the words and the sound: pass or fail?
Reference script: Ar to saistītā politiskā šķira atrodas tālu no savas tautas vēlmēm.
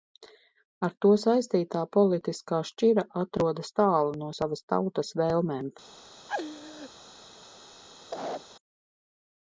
fail